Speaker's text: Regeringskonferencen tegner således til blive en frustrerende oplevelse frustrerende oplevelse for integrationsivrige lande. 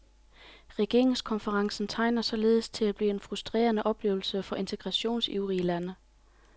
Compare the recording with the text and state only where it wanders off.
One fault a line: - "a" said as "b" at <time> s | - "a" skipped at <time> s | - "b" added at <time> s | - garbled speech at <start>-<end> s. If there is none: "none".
- "at" added at 2.9 s
- "frustrerende oplevelse" skipped at 4.4 s